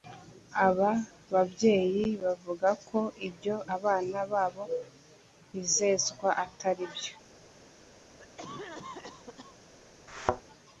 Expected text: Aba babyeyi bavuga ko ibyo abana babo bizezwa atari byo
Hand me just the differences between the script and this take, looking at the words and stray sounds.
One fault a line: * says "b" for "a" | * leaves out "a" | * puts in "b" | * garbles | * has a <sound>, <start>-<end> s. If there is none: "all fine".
* has a cough, 8.2-9.6 s
* has a thud, 10.1-10.4 s